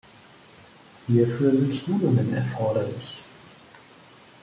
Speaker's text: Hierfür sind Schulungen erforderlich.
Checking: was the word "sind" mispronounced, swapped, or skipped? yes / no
no